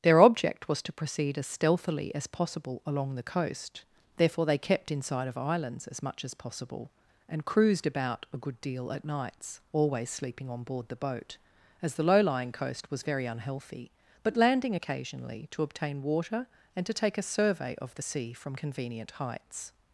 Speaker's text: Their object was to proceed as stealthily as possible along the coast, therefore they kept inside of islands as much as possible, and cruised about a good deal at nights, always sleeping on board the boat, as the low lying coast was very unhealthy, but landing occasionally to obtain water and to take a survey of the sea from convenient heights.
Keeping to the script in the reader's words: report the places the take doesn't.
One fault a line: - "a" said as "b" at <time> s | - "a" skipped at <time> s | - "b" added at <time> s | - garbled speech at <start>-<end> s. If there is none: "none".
none